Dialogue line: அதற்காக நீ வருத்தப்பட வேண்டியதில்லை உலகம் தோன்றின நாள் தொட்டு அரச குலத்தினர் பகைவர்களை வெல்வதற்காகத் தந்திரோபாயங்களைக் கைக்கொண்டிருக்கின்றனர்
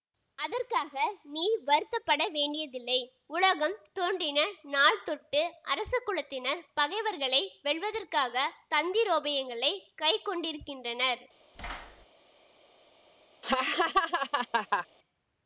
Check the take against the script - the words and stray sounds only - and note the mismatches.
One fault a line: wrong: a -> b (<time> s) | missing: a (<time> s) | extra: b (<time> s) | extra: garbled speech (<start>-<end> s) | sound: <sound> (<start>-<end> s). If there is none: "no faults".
sound: thud (11.5-12.1 s)
sound: laugh (13.4-14.9 s)